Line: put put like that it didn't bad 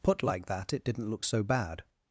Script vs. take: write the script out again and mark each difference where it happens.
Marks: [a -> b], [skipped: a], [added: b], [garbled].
put [skipped: put] like that it didn't [added: look so] bad